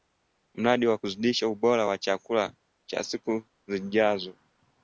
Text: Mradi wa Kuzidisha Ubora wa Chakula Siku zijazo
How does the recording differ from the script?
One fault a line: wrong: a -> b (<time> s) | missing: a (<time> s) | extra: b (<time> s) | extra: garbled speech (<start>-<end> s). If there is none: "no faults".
extra: cha (2.9 s)